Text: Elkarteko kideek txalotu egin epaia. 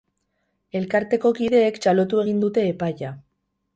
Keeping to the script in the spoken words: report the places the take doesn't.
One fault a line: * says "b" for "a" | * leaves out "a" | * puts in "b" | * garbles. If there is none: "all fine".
* puts in "dute"